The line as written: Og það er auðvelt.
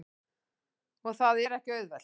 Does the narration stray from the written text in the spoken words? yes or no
yes